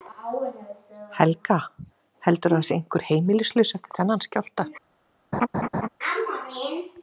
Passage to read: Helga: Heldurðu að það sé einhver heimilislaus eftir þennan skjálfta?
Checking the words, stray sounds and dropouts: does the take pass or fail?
fail